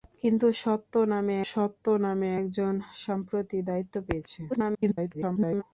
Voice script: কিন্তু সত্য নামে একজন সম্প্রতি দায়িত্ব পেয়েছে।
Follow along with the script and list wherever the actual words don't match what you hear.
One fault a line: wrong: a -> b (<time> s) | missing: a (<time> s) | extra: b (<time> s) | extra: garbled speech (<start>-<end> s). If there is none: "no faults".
extra: সত্য নামে (1.5 s)
extra: garbled speech (4.5-5.6 s)